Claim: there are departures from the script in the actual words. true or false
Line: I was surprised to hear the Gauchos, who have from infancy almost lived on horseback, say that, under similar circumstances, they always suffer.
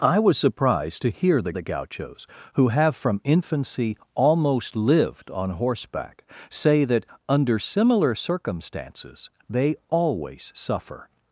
true